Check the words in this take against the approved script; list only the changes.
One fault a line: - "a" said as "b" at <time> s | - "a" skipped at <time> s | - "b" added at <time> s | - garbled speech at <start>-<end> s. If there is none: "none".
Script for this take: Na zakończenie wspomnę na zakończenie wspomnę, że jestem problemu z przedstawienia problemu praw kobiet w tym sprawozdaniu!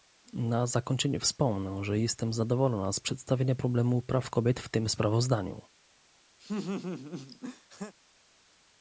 - "na zakończenie wspomnę" skipped at 1.8 s
- "problemu" said as "zadowolona" at 2.3 s